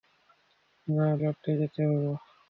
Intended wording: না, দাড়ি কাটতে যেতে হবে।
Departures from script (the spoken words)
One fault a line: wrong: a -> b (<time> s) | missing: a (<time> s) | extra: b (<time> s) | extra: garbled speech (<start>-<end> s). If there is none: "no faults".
missing: দাড়ি (1.1 s)